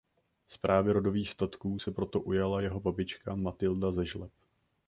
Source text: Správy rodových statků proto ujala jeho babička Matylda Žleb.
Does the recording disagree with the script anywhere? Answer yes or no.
yes